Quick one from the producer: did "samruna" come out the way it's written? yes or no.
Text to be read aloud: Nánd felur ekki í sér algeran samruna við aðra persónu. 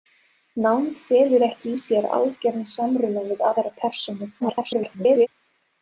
yes